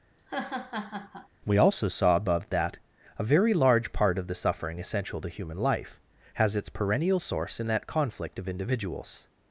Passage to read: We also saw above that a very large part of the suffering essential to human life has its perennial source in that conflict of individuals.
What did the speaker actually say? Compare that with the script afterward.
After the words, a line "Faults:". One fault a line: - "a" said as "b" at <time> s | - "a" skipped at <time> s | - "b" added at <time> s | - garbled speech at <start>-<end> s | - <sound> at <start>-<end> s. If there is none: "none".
We also saw above that a very large part of the suffering essential to human life has its perennial source in that conflict of individuals.
Faults:
- laugh at 0.2-1.3 s